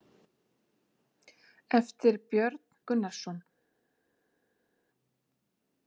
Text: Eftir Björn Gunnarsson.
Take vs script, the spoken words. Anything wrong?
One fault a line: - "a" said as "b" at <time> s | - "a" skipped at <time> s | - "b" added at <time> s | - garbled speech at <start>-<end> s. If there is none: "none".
none